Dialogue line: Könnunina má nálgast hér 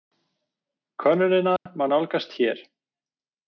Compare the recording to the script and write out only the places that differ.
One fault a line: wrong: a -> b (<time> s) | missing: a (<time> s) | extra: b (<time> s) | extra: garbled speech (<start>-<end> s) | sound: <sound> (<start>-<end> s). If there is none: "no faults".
sound: dropout (1.6-1.7 s)